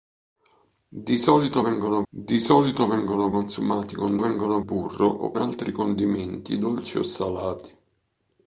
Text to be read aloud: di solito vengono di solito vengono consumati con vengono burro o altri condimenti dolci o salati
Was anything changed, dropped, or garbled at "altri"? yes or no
no